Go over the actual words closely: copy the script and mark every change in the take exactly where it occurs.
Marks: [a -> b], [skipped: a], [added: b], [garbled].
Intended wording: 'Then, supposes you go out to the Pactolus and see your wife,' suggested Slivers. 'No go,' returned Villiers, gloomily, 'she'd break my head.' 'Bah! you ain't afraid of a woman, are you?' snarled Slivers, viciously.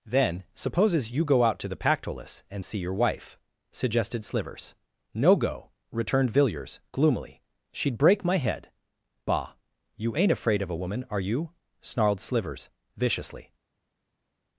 'Then, supposes you go out to the Pactolus and see your wife,' suggested Slivers. 'No go,' returned Villiers, gloomily, 'she'd break my head.' 'Bah! you ain't afraid of a woman, are you?' snarled Slivers, viciously.